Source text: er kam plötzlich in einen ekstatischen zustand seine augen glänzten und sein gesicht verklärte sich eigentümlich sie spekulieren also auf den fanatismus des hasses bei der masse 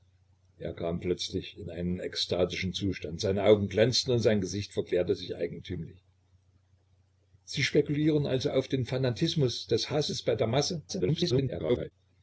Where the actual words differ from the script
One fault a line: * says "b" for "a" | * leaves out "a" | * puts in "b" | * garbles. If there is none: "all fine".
* garbles